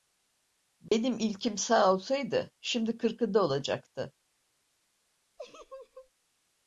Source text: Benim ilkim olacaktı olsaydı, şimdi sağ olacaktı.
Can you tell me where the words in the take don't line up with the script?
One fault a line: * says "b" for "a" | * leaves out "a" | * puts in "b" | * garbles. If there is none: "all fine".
* says "sağ" for "olacaktı"
* says "kırkında" for "sağ"